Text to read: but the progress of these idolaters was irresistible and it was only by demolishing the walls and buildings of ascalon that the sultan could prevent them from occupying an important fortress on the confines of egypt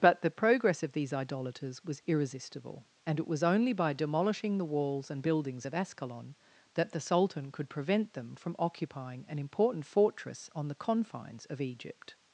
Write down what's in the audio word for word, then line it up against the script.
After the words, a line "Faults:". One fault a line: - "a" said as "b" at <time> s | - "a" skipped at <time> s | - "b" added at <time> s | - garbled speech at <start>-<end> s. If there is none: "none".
but the progress of these idolaters was irresistible and it was only by demolishing the walls and buildings of ascalon that the sultan could prevent them from occupying an important fortress on the confines of egypt
Faults:
none